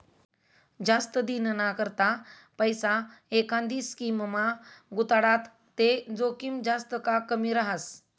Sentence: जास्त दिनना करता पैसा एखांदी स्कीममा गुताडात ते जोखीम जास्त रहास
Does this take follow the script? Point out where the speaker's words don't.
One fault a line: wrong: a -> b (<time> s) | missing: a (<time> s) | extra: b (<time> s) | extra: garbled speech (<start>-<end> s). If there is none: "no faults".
extra: का कमी (7.1 s)